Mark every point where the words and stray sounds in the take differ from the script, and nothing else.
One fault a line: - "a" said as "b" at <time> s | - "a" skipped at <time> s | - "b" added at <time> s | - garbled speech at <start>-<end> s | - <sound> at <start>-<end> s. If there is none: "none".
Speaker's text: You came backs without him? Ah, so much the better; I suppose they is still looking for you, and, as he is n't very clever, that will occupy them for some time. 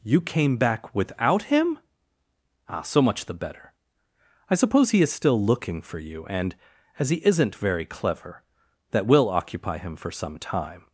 - "backs" said as "back" at 0.6 s
- "they" said as "he" at 4.9 s
- "them" said as "him" at 9.8 s